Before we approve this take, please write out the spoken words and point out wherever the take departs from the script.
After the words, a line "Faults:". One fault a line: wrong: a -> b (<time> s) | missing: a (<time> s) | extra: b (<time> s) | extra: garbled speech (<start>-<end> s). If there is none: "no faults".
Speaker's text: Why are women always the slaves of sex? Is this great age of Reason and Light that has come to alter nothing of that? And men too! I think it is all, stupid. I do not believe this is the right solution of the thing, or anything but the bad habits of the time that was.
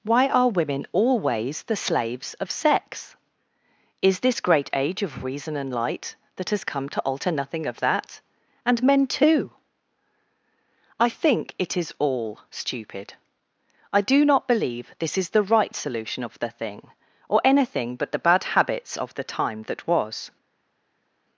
Why are women always the slaves of sex? Is this great age of Reason and Light that has come to alter nothing of that? And men too! I think it is all, stupid. I do not believe this is the right solution of the thing, or anything but the bad habits of the time that was.
Faults:
no faults